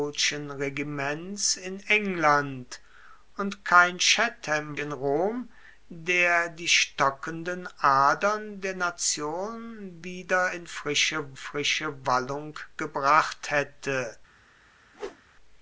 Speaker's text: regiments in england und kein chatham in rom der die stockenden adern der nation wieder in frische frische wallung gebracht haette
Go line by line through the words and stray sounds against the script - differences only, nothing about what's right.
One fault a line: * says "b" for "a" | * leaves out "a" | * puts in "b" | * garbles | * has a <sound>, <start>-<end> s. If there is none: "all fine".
* has a whoosh, 14.9-15.2 s